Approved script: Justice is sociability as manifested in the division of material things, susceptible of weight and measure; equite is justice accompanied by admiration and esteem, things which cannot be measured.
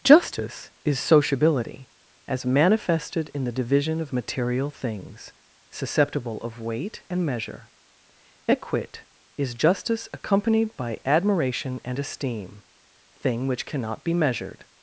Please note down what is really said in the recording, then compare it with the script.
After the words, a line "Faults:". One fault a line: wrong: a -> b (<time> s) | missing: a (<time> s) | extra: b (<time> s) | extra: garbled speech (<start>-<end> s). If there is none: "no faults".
Justice is sociability as manifested in the division of material things, susceptible of weight and measure; equite is justice accompanied by admiration and esteem, thing which cannot be measured.
Faults:
wrong: things -> thing (13.1 s)